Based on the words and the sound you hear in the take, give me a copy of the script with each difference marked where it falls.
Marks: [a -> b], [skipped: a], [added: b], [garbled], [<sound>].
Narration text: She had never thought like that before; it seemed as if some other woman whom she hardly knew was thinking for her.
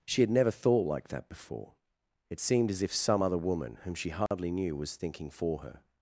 She had never thought like that before; it seemed as if some other woman whom she hardly [dropout] knew was thinking for her.